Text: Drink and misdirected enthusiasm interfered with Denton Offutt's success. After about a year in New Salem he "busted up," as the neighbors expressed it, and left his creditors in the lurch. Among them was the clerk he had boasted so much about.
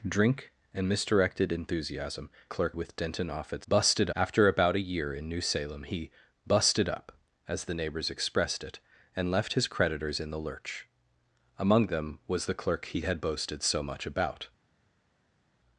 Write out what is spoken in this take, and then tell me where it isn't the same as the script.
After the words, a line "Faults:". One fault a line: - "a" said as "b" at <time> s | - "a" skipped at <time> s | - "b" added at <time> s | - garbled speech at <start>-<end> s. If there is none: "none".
Drink and misdirected enthusiasm clerk with Denton Offutt's busted. After about a year in New Salem he "busted up," as the neighbors expressed it, and left his creditors in the lurch. Among them was the clerk he had boasted so much about.
Faults:
- "interfered" said as "clerk" at 2.5 s
- "success" said as "busted" at 3.7 s